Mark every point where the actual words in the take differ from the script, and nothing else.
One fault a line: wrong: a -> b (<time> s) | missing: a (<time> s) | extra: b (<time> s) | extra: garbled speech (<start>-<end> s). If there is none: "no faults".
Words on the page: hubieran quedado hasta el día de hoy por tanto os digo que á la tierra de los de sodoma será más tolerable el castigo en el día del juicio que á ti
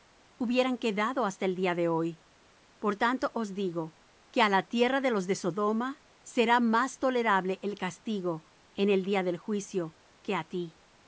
no faults